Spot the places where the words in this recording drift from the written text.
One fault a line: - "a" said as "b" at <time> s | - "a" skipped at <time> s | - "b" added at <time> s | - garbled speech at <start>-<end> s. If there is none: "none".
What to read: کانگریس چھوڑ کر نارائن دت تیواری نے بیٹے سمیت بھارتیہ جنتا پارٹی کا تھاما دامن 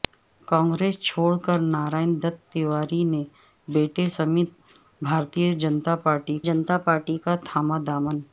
- "جنتا پارٹی" added at 6.5 s